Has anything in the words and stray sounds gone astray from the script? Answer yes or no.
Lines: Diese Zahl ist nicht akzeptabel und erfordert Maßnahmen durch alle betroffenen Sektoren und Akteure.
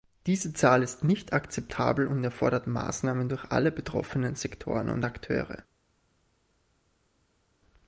no